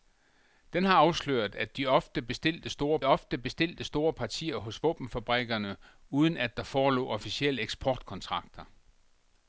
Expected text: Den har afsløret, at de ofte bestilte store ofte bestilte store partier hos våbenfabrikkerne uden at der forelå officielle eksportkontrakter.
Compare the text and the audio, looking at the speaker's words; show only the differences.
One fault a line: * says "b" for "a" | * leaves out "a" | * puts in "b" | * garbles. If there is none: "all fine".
all fine